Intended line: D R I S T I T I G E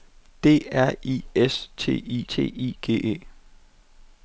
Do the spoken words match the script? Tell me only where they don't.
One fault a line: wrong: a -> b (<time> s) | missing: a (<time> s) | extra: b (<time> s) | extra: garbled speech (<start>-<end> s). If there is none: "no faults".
no faults